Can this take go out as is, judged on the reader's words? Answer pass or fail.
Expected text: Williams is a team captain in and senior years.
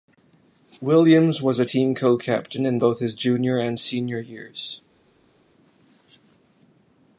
fail